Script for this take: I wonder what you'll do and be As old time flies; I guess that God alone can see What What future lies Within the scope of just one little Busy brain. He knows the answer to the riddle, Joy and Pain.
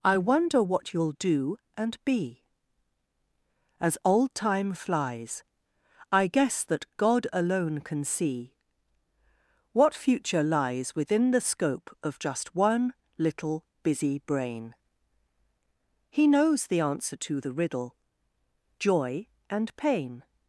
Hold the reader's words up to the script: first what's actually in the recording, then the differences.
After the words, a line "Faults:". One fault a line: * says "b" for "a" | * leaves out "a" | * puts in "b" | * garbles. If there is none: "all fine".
I wonder what you'll do and be As old time flies; I guess that God alone can see What future lies Within the scope of just one little Busy brain. He knows the answer to the riddle, Joy and Pain.
Faults:
* leaves out "What"